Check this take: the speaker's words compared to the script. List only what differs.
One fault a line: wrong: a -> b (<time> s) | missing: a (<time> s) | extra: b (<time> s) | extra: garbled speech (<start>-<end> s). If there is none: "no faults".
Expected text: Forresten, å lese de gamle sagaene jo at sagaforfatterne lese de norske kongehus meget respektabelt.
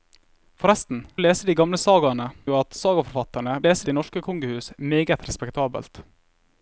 no faults